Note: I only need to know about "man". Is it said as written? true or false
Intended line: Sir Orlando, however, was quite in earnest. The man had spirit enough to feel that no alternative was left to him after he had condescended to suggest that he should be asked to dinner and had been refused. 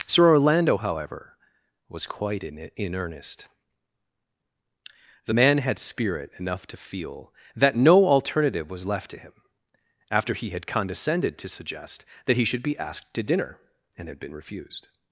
true